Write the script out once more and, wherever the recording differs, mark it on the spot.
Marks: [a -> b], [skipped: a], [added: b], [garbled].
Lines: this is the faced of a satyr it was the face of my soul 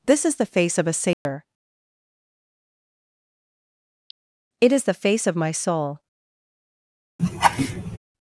this is the [faced -> face] of a satyr it [was -> is] the face of my soul